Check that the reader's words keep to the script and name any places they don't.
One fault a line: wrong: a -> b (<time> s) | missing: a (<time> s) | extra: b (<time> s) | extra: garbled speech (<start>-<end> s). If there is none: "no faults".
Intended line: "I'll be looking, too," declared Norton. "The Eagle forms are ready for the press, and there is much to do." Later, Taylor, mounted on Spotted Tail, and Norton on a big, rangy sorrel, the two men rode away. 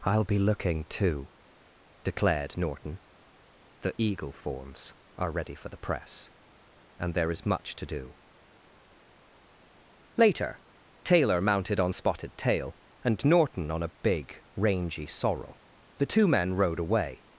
no faults